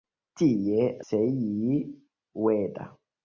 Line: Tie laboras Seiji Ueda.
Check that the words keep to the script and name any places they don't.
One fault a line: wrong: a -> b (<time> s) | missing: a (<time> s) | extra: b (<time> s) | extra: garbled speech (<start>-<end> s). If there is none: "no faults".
missing: laboras (0.9 s)